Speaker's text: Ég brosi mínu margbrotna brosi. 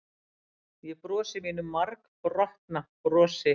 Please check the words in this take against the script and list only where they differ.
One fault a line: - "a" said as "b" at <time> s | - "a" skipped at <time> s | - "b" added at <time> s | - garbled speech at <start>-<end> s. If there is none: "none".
none